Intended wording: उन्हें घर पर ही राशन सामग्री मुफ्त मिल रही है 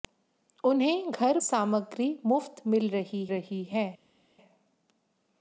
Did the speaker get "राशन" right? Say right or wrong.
wrong